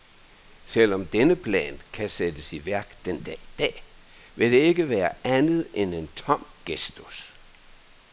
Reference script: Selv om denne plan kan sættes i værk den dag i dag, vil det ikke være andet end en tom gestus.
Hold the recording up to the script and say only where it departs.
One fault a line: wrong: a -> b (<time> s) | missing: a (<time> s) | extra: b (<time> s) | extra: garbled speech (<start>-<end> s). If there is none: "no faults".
no faults